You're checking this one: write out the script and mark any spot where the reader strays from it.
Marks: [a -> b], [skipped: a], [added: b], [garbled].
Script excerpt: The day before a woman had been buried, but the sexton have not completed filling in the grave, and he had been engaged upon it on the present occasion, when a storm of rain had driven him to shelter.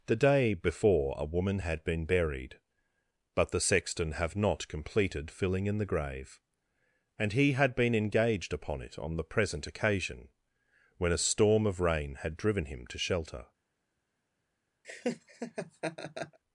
The day before a woman had been buried, but the sexton have not completed filling in the grave, and he had been engaged upon it on the present occasion, when a storm of rain had driven him to shelter.